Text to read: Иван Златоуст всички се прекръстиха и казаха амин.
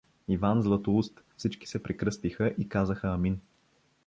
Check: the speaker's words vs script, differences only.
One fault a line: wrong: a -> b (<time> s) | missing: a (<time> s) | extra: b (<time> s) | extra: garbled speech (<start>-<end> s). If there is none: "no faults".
no faults